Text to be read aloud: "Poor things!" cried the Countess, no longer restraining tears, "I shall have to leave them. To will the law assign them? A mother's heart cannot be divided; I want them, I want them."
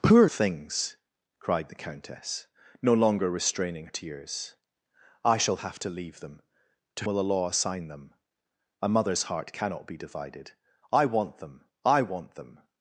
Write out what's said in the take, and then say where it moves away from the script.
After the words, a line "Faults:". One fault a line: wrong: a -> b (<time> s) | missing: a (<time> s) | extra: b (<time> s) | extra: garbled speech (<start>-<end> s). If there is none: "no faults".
"Poor things!" cried the Countess, no longer restraining tears, "I shall have to leave them. To will the law assign them? A mother's heart cannot be divided; I want them, I want them."
Faults:
no faults